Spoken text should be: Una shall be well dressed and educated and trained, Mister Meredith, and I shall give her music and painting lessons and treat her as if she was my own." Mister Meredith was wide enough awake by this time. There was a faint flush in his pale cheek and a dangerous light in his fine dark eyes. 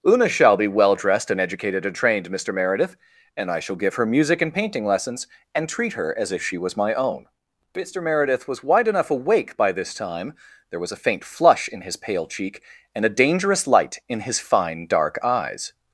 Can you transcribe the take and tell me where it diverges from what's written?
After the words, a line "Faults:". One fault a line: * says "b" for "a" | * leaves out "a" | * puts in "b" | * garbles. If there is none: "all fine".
Una shall be well dressed and educated and trained, Mister Meredith, and I shall give her music and painting lessons and treat her as if she was my own." Mister Meredith was wide enough awake by this time. There was a faint flush in his pale cheek and a dangerous light in his fine dark eyes.
Faults:
all fine